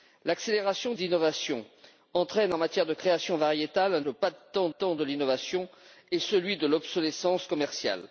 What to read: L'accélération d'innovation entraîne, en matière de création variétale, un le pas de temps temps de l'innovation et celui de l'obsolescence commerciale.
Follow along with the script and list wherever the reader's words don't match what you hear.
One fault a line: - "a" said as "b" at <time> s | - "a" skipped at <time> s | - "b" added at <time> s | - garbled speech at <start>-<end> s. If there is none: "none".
none